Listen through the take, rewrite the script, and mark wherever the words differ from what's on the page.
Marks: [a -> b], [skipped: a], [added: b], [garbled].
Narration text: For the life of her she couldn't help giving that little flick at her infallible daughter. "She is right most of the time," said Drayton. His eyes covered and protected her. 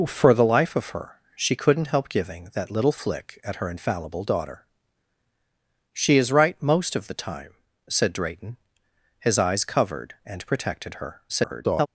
For the life of her she couldn't help giving that little flick at her infallible daughter. "She is right most of the time," said Drayton. His eyes covered and protected her. [garbled]